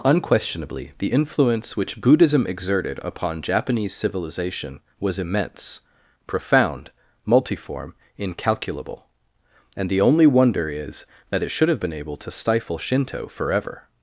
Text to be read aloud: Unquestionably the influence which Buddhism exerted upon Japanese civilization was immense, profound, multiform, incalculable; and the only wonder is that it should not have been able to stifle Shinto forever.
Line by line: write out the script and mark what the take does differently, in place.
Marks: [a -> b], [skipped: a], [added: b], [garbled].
Unquestionably the influence which Buddhism exerted upon Japanese civilization was immense, profound, multiform, incalculable; and the only wonder is that it should [skipped: not] have been able to stifle Shinto forever.